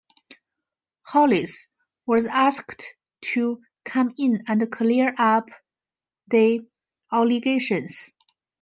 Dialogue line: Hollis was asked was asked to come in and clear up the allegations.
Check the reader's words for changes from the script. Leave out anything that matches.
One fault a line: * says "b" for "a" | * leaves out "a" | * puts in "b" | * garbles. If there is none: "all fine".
* leaves out "was asked"